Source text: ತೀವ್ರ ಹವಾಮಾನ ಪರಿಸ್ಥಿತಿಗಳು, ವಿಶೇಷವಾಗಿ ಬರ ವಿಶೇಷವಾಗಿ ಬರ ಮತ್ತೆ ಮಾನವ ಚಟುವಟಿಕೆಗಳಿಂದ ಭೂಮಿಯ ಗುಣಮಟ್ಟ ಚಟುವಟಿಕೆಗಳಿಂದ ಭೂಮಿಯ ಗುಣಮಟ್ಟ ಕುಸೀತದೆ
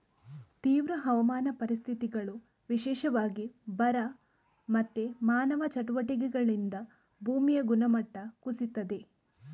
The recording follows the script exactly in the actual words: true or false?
false